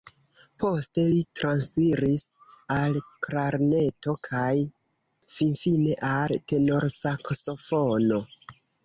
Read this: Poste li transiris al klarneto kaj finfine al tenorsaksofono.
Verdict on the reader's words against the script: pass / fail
pass